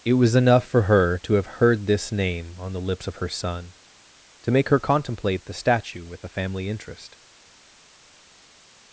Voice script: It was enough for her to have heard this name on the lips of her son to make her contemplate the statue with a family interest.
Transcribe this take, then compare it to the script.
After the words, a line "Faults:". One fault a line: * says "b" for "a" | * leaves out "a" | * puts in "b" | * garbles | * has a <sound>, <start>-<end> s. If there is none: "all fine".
It was enough for her to have heard this name on the lips of her son to make her contemplate the statue with a family interest.
Faults:
all fine